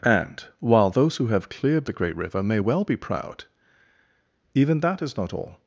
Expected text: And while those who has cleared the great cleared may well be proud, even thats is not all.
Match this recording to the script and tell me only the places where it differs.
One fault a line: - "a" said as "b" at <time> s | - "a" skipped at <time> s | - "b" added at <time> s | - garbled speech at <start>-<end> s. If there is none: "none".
- "has" said as "have" at 1.3 s
- "cleared" said as "river" at 2.2 s
- "thats" said as "that" at 4.8 s